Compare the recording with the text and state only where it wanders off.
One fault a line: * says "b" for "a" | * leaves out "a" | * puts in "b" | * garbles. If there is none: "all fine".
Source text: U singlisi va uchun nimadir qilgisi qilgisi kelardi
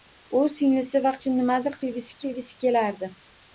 all fine